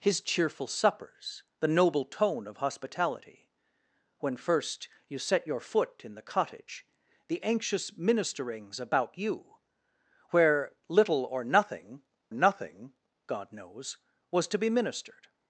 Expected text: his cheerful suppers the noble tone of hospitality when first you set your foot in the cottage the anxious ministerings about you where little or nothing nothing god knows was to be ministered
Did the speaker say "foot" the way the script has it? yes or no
yes